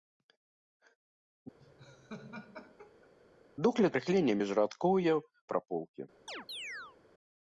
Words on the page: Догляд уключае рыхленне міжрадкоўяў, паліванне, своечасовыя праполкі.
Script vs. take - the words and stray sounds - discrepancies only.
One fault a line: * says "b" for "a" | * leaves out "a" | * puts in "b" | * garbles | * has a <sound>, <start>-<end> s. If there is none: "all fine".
* has a laugh, 1.6-3.1 s
* leaves out "уключае"
* leaves out "паліванне своечасовыя"
* has a chirp, 6.3-7.0 s